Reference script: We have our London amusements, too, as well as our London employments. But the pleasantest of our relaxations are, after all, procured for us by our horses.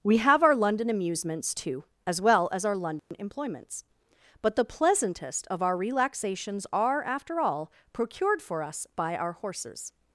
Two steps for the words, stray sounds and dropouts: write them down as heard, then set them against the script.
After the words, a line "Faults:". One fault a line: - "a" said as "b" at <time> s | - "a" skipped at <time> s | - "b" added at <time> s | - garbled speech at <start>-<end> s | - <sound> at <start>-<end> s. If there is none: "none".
We have our London amusements, too, as well as our London employments. But the pleasantest of our relaxations are, after all, procured for us by our horses.
Faults:
- dropout at 3.0-3.1 s